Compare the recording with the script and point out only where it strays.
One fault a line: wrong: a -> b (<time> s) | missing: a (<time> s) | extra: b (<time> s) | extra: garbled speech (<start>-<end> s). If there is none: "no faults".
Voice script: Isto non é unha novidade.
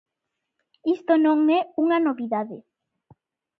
no faults